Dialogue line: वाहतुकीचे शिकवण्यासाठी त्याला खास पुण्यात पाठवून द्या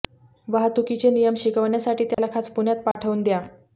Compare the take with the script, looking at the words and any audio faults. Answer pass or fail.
fail